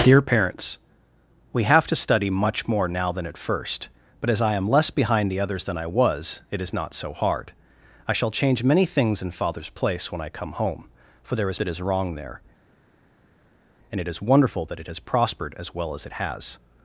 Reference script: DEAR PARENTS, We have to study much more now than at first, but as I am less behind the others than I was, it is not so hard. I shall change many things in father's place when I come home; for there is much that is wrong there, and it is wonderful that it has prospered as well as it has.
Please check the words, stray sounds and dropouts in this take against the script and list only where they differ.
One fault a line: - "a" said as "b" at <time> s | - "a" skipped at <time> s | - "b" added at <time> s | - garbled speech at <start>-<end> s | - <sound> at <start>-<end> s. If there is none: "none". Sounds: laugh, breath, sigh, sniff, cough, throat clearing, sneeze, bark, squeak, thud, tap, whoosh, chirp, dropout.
- "much" skipped at 11.6 s